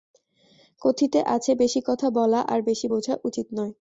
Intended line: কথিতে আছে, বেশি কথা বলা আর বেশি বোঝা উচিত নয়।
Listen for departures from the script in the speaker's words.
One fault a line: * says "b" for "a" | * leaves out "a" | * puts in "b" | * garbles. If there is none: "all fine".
all fine